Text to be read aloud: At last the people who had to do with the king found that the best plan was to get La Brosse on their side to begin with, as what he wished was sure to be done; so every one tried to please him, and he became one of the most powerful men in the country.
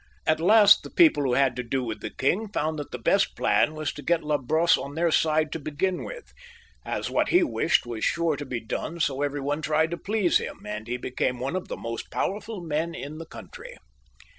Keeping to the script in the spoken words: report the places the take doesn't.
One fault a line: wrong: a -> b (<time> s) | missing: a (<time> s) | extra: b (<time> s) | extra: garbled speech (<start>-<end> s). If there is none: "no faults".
no faults